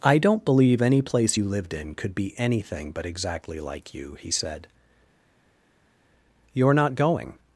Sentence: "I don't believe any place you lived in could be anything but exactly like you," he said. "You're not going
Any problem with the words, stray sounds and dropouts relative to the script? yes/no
no